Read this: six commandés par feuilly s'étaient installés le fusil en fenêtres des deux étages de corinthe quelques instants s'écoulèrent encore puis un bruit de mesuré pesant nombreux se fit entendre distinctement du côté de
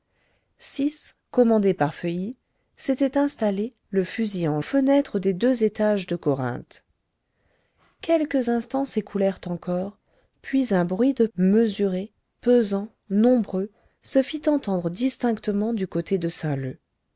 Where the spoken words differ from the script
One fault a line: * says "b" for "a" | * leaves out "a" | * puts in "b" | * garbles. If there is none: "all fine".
all fine